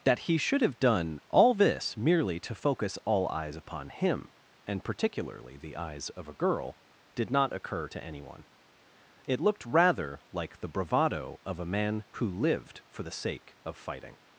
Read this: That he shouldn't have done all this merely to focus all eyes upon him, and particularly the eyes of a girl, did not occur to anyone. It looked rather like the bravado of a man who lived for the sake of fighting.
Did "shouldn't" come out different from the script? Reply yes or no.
yes